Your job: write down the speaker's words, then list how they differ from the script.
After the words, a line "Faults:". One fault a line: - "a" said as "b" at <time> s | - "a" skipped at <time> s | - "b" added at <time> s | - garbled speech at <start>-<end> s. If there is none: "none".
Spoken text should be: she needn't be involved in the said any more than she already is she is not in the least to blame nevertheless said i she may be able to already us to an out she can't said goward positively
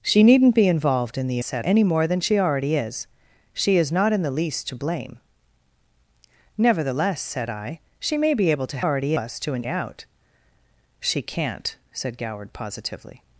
she needn't be involved in the said any more than she already is she is not in the least to blame nevertheless said i she may be able to already us to an out she can't said goward positively
Faults:
none